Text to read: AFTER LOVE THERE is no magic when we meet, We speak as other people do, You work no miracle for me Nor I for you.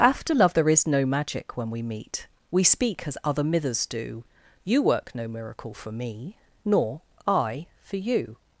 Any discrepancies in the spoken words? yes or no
yes